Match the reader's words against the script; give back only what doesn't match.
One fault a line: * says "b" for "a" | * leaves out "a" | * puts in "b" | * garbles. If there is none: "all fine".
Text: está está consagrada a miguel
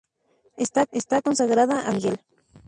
all fine